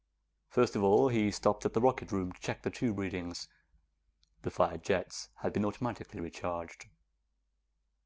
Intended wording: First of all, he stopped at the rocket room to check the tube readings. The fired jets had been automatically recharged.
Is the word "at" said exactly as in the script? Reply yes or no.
yes